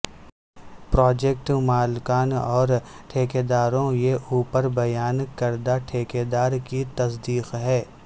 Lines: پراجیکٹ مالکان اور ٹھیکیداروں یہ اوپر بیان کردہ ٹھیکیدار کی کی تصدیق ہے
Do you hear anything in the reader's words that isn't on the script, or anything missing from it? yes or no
yes